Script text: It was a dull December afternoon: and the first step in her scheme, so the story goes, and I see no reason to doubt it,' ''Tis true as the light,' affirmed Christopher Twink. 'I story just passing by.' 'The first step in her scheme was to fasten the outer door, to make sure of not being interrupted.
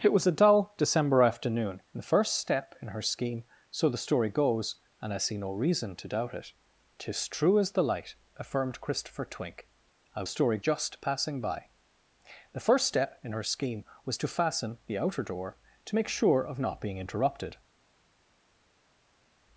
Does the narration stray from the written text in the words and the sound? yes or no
no